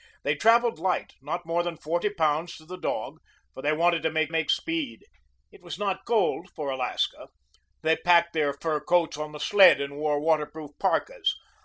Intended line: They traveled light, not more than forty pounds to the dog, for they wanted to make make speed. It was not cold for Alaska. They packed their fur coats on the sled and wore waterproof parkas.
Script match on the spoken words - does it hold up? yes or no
yes